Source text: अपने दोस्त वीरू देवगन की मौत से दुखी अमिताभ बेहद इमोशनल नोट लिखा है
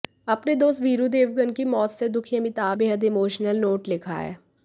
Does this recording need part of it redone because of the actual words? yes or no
no